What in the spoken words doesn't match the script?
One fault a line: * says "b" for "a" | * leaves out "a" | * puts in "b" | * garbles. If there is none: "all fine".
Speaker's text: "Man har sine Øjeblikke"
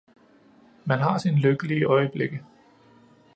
* puts in "lykkelige"